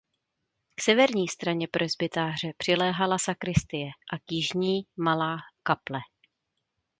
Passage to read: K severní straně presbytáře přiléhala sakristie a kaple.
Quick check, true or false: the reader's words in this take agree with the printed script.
false